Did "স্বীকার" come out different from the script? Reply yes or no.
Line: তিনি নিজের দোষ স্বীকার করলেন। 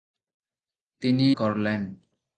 yes